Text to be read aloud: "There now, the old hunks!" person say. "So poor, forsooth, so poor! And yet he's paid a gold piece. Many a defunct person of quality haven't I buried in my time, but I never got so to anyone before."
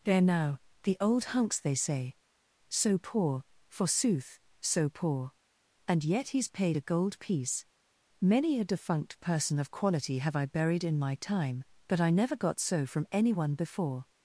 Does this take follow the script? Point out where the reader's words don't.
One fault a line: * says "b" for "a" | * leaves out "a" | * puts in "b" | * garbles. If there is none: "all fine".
* says "they" for "person"
* says "have" for "haven't"
* says "from" for "to"